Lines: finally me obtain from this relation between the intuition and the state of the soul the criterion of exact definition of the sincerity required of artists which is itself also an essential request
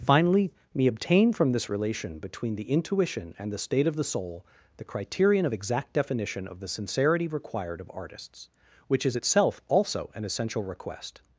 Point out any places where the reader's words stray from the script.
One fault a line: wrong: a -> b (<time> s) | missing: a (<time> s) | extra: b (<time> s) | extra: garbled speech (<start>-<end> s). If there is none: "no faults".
no faults